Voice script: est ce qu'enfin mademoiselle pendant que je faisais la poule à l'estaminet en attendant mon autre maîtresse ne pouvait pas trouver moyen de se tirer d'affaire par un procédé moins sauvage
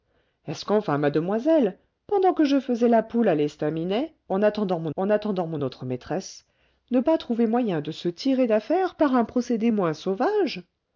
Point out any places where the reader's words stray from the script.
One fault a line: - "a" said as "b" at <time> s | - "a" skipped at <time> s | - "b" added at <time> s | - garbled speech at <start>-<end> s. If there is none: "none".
- "en attendant mon" added at 5.0 s
- "pouvait" skipped at 7.0 s